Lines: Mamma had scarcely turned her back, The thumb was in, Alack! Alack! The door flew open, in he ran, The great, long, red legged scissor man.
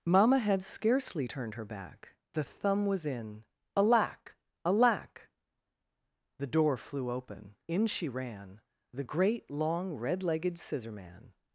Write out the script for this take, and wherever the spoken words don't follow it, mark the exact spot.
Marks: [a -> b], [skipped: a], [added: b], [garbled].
Mamma had scarcely turned her back, The thumb was in, Alack! Alack! The door flew open, in [he -> she] ran, The great, long, red legged scissor man.